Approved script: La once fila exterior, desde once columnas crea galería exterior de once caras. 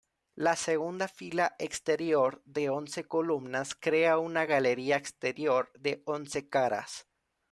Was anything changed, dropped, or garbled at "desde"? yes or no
yes